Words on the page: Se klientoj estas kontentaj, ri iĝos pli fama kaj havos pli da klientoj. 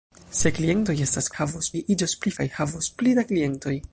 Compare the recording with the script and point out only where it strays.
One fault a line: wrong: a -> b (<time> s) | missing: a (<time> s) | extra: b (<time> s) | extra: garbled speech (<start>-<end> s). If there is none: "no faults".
wrong: kontentaj -> havos (1.4 s)
missing: fama (2.3 s)